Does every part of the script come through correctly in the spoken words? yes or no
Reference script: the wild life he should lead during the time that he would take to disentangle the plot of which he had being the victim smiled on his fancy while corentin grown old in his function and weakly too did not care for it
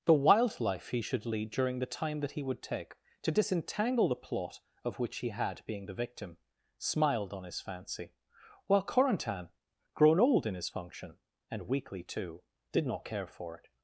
yes